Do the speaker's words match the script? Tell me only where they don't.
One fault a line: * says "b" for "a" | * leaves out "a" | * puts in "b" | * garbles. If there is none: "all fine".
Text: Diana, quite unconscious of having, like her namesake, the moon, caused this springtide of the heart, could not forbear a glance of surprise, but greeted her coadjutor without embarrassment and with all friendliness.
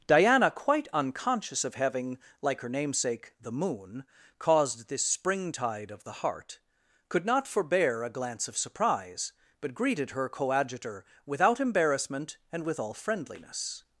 all fine